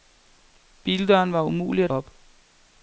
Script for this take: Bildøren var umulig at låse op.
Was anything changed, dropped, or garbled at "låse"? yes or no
yes